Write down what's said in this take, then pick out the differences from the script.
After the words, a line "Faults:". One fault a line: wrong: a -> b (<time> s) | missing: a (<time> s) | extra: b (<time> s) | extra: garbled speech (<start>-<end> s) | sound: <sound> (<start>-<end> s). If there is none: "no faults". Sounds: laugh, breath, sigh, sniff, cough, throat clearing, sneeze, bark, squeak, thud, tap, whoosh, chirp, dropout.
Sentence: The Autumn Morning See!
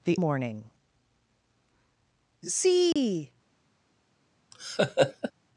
The Morning See!
Faults:
missing: Autumn (0.2 s)
sound: dropout (2.9-3.0 s)
sound: laugh (4.5-5.3 s)